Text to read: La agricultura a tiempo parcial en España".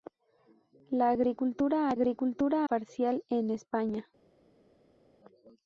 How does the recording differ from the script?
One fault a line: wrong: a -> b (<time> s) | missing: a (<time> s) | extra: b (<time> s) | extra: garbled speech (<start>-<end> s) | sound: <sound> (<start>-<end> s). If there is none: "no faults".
wrong: tiempo -> agricultura (1.9 s)